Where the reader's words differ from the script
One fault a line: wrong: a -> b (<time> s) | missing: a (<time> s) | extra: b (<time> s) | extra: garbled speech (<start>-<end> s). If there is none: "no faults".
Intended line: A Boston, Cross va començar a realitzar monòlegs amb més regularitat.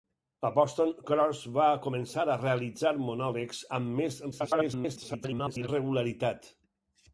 extra: garbled speech (4.3-5.7 s)